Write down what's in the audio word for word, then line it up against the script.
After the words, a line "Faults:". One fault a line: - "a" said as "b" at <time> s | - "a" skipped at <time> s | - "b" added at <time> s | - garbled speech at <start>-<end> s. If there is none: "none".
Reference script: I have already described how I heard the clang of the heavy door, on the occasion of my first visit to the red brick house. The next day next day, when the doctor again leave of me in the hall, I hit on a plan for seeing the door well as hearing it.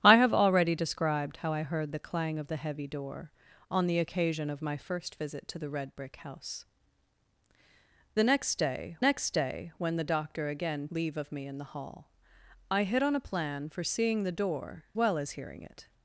I have already described how I heard the clang of the heavy door, on the occasion of my first visit to the red brick house. The next day next day, when the doctor again leave of me in the hall, I hit on a plan for seeing the door well as hearing it.
Faults:
none